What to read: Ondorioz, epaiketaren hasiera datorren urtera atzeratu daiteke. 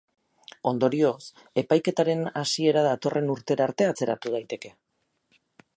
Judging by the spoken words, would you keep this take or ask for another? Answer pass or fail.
fail